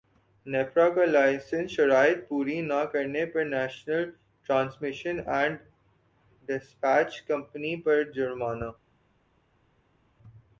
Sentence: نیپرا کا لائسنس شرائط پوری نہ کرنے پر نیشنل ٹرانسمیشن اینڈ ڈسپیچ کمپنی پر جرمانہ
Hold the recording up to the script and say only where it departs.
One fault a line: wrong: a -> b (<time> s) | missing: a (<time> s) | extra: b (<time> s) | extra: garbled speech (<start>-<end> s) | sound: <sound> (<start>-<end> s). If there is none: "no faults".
no faults